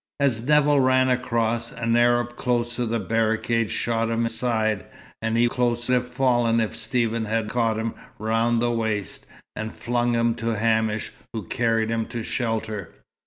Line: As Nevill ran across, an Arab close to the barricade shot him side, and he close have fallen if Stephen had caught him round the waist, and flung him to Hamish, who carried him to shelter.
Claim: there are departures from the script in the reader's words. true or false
false